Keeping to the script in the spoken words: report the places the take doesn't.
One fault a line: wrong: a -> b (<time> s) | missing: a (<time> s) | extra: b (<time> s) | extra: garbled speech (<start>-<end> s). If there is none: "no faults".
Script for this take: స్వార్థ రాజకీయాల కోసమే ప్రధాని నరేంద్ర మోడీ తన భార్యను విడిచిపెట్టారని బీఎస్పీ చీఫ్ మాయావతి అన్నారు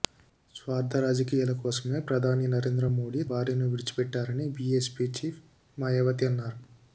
missing: తన (3.2 s)